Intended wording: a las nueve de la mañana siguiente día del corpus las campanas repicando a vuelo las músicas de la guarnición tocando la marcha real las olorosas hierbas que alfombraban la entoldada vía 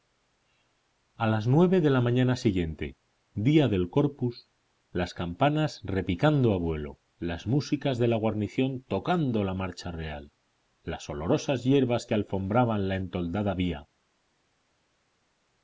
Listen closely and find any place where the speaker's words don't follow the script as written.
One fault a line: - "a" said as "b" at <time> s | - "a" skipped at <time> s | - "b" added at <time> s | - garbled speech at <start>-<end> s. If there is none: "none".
none